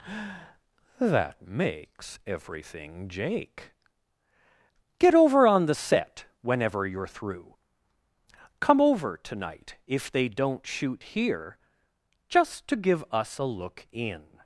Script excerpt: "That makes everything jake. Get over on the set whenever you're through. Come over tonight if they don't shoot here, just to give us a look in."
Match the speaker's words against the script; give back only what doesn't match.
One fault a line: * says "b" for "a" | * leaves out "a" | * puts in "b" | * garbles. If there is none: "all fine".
all fine